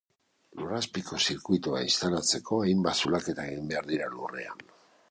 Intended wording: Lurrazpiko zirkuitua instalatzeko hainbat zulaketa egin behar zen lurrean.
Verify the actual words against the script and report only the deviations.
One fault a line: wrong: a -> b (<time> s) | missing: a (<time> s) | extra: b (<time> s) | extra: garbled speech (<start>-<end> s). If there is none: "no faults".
wrong: zen -> dira (3.9 s)